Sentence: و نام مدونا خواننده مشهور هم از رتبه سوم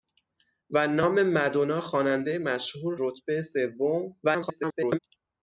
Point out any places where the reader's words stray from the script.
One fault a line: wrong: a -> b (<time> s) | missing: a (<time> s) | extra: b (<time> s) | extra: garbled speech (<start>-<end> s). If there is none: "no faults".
missing: هم از (3.0 s)
extra: garbled speech (4.2-5.0 s)